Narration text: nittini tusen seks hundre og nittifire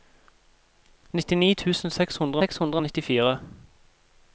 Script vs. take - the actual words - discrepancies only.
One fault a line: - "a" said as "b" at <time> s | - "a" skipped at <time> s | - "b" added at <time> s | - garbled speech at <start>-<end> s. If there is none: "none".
- "seks hundre" added at 2.4 s